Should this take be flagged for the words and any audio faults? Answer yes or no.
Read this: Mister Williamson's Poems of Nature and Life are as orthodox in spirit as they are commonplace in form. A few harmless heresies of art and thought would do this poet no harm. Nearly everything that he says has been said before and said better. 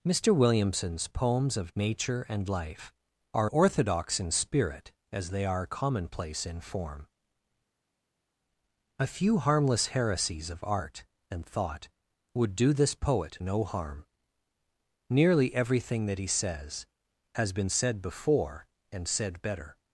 yes